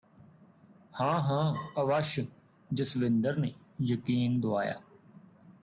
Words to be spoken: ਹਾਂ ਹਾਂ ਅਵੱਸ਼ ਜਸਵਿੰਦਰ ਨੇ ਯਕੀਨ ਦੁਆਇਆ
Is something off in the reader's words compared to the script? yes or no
no